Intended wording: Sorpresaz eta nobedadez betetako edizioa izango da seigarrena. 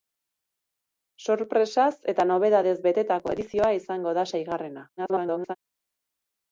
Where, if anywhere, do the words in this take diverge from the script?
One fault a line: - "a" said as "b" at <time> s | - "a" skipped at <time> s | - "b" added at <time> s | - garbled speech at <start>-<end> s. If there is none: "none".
- garbled speech at 5.0-5.6 s